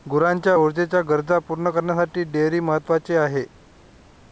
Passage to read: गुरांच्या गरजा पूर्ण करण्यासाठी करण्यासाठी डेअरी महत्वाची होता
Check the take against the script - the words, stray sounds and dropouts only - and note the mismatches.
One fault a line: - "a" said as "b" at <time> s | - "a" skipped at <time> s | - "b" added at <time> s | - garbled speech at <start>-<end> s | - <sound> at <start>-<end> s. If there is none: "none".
- "ऊर्जेच्या" added at 0.5 s
- "करण्यासाठी" skipped at 2.2 s
- "होता" said as "आहे" at 3.2 s